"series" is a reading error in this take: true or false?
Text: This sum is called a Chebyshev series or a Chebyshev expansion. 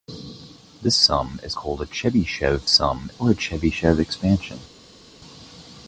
true